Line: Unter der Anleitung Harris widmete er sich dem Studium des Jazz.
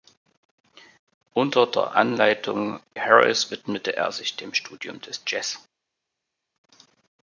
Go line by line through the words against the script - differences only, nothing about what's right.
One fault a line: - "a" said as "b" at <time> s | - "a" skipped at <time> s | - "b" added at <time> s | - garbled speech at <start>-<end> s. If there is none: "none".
none